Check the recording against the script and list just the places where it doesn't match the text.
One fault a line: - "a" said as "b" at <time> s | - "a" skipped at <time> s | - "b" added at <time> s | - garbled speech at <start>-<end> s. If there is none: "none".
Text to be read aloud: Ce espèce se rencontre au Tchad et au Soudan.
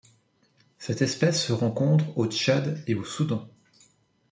- "Ce" said as "Cette" at 0.8 s